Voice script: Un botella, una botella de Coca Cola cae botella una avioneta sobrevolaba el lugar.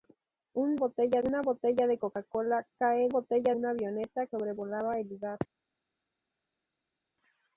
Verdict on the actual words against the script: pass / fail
pass